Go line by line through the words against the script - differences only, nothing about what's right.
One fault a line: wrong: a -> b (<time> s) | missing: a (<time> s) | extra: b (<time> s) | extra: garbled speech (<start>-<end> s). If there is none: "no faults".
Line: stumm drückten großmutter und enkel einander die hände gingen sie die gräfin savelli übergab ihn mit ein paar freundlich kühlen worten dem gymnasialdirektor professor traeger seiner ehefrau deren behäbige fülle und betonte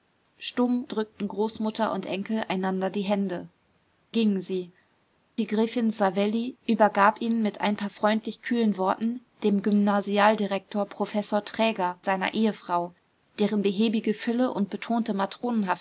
no faults